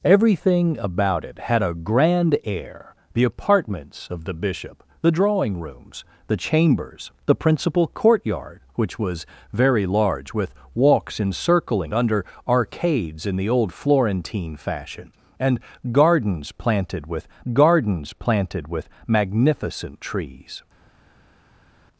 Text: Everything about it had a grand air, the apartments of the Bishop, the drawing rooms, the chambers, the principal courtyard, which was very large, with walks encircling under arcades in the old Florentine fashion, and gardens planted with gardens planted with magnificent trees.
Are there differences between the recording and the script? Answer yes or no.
no